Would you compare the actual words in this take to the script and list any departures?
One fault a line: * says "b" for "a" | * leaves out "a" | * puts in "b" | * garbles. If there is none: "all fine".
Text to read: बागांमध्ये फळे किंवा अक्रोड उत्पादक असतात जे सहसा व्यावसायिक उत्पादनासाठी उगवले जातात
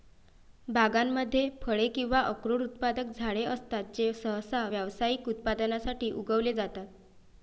* puts in "झाडे"